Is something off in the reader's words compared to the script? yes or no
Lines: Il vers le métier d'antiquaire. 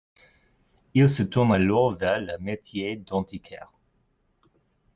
yes